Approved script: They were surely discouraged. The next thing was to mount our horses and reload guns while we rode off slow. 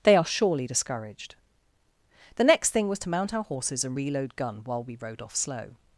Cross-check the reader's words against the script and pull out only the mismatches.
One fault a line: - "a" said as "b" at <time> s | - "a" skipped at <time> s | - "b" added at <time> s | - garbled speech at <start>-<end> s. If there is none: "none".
- "were" said as "are" at 0.1 s
- "guns" said as "gun" at 4.4 s